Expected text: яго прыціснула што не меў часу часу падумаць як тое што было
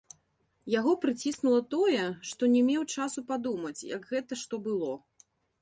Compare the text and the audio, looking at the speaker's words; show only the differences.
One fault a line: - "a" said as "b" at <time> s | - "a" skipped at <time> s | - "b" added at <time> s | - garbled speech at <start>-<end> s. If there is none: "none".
- "тое" added at 1.8 s
- "часу" skipped at 3.2 s
- "тое" said as "гэта" at 4.2 s